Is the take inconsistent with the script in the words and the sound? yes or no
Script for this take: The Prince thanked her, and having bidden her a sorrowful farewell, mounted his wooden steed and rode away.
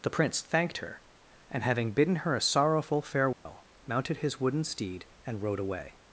yes